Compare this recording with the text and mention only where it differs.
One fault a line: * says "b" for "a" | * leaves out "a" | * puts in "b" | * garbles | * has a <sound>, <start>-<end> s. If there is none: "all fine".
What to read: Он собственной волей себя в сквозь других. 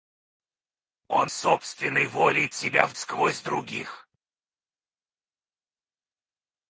all fine